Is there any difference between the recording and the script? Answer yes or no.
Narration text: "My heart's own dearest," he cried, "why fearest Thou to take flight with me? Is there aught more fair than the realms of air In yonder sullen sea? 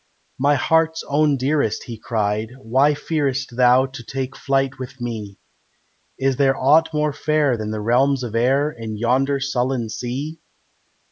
no